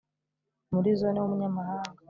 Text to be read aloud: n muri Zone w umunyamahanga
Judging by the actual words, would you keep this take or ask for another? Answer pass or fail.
pass